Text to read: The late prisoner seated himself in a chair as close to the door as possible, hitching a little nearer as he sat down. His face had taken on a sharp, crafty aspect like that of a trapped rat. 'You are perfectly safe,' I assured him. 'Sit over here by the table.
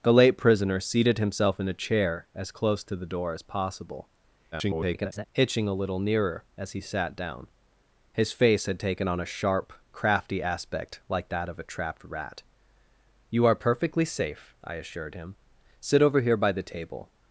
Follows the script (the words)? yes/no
no